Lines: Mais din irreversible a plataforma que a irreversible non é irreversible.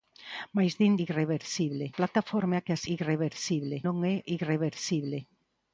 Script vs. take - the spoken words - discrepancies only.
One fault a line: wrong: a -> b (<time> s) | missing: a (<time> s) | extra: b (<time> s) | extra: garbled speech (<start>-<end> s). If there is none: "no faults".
no faults